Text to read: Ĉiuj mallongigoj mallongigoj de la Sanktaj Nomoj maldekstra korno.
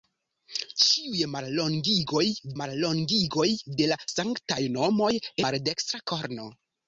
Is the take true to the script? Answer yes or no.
yes